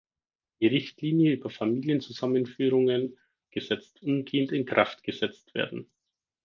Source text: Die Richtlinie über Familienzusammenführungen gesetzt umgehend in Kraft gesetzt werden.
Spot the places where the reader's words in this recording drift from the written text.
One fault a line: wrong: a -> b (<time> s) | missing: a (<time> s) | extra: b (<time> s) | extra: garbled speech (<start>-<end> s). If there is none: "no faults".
no faults